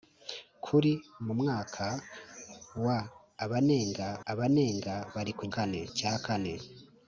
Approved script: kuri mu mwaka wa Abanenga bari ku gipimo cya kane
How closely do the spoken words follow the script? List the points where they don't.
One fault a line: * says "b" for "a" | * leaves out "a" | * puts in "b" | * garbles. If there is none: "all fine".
* puts in "Abanenga"
* says "kane" for "gipimo"